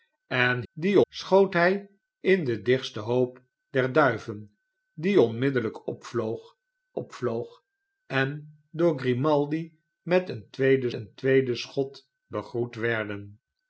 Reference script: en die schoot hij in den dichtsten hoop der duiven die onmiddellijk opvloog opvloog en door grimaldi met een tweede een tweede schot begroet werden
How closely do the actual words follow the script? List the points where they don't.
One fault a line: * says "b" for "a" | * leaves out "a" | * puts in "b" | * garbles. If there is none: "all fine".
all fine